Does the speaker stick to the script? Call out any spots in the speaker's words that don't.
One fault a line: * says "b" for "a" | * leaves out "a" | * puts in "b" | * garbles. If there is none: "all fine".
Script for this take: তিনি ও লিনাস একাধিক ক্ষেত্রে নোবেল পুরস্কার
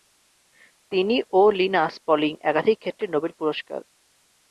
* puts in "পলিং"